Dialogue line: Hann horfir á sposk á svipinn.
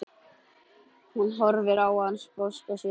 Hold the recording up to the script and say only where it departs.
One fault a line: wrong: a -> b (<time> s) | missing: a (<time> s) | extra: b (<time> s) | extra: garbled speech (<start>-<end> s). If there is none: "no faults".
wrong: Hann -> Hún (1.1 s)
extra: hann (2.0 s)